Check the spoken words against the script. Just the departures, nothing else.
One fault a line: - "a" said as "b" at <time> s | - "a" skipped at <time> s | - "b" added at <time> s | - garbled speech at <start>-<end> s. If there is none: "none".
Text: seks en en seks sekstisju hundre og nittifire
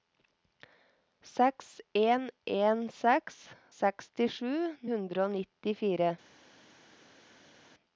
none